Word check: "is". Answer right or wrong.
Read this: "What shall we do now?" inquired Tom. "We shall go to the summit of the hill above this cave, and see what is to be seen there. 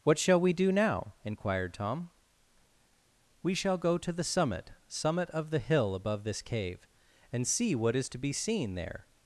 right